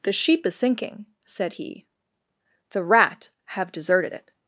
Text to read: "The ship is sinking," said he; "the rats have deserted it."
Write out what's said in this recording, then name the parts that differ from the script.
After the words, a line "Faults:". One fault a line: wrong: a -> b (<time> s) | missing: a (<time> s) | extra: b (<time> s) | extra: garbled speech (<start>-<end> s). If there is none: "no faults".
"The sheep is sinking," said he; "the rat have deserted it."
Faults:
wrong: ship -> sheep (0.1 s)
wrong: rats -> rat (2.8 s)